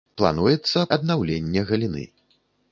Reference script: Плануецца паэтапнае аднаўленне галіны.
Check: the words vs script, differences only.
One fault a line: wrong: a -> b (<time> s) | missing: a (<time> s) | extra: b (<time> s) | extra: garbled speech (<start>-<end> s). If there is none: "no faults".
missing: паэтапнае (0.8 s)